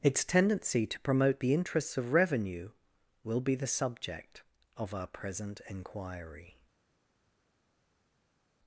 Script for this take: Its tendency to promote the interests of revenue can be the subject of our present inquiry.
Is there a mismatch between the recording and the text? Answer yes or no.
yes